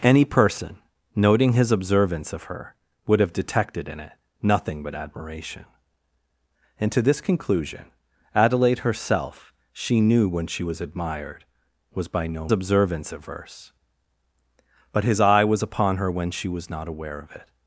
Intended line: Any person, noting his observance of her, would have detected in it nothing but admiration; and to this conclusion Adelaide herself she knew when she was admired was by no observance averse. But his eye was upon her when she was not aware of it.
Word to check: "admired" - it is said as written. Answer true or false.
true